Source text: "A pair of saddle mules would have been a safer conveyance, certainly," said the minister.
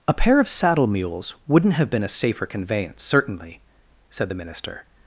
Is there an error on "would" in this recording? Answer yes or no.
yes